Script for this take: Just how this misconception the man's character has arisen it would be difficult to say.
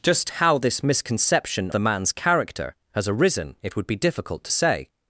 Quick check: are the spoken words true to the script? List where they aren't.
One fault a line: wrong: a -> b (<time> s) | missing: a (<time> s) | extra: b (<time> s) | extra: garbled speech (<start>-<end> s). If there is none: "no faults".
no faults